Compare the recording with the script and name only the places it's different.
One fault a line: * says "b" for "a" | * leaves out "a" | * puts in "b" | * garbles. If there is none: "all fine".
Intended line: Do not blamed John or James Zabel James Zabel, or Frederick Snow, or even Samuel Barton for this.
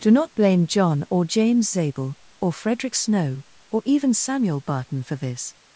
* says "blame" for "blamed"
* leaves out "James Zabel"